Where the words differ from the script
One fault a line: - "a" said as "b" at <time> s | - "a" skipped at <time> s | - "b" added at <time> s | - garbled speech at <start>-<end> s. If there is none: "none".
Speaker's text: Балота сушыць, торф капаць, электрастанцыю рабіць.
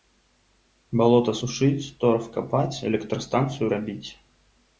none